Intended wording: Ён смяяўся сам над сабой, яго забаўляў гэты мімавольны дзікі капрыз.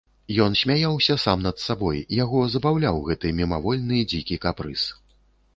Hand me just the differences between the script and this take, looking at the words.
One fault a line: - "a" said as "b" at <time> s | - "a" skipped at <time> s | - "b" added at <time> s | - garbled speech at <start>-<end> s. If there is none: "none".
none